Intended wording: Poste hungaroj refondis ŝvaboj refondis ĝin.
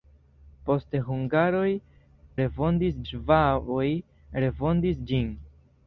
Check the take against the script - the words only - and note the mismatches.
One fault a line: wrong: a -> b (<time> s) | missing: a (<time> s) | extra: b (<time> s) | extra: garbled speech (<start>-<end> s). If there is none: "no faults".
no faults